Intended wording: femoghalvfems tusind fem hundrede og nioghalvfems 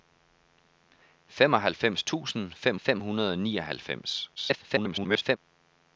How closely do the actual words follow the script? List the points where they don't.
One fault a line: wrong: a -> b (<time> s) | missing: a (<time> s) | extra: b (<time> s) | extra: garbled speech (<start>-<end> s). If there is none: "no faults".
extra: fem (2.8 s)
extra: garbled speech (4.4-5.4 s)